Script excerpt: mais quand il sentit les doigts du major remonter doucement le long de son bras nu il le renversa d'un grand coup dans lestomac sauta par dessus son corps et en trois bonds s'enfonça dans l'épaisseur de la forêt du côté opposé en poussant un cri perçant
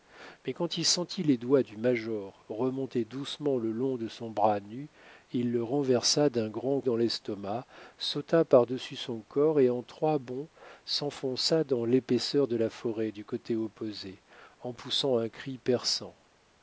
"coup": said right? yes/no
no